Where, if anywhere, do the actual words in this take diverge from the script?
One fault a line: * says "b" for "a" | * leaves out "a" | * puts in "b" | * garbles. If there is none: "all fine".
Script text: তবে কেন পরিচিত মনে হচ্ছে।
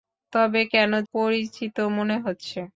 all fine